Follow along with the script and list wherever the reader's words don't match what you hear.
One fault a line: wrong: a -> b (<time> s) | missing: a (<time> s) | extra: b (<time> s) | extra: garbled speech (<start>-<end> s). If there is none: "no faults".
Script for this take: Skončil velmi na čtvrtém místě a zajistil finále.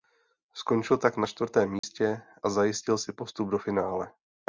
wrong: velmi -> tak (1.0 s)
extra: si postup do (3.0 s)